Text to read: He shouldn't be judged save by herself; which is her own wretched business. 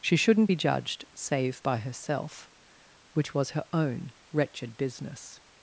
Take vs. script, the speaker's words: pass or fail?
fail